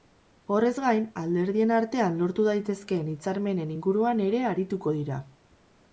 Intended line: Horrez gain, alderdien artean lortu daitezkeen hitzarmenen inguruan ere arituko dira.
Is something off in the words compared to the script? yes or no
no